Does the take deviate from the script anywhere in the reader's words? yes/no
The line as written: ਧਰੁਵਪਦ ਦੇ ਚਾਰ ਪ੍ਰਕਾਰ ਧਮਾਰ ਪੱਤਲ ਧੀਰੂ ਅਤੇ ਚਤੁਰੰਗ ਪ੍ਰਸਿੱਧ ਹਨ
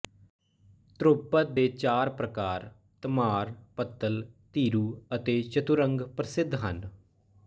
no